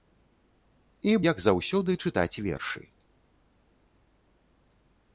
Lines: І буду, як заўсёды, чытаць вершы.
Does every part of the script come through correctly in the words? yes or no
no